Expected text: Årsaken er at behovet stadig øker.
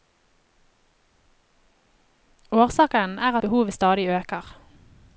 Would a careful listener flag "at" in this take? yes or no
yes